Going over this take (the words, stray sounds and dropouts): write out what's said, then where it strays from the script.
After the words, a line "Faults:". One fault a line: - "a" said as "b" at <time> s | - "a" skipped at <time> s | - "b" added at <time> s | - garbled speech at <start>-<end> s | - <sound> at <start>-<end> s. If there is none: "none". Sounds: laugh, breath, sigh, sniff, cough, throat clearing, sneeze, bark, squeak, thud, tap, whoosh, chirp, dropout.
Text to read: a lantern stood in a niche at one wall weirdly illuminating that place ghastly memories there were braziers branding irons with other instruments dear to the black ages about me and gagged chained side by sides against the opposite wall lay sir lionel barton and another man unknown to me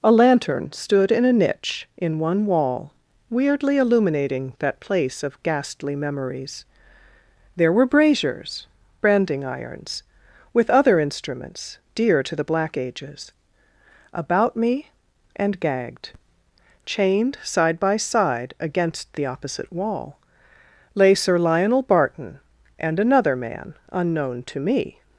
a lantern stood in a niche in one wall weirdly illuminating that place of ghastly memories there were braziers branding irons with other instruments dear to the black ages about me and gagged chained side by side against the opposite wall lay sir lionel barton and another man unknown to me
Faults:
- "at" said as "in" at 2.0 s
- "of" added at 5.2 s
- "sides" said as "side" at 18.0 s